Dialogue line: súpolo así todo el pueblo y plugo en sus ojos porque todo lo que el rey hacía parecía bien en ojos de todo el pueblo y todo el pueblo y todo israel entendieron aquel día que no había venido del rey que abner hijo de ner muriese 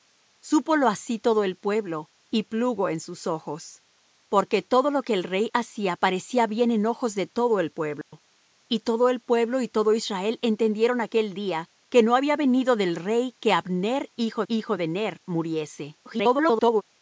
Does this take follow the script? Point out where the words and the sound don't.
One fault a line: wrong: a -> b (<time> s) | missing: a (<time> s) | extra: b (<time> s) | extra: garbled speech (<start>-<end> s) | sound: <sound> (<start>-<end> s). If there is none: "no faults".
sound: dropout (8.0-8.1 s)
extra: hijo (14.5 s)
extra: garbled speech (16.1-16.8 s)